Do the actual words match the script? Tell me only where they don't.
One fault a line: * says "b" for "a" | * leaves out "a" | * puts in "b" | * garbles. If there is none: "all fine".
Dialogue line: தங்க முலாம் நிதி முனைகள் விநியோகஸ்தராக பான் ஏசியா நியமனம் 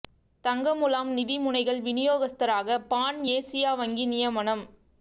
* puts in "வங்கி"